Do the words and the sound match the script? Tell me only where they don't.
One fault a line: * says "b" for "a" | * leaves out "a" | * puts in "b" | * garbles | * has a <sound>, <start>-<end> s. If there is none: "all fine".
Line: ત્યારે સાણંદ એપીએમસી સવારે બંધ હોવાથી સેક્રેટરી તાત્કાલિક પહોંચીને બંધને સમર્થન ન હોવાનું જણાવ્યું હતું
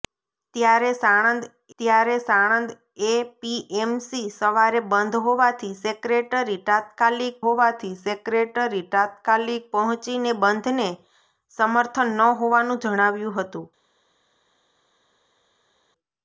* puts in "ત્યારે સાણંદ"
* puts in "હોવાથી સેક્રેટરી તાત્કાલિક"